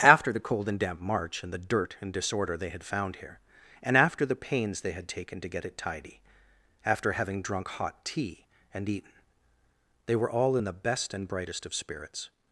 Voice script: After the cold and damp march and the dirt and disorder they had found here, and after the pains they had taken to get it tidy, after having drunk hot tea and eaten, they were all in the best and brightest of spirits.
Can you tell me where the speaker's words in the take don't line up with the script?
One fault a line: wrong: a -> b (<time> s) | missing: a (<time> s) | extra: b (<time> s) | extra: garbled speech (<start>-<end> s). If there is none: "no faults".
no faults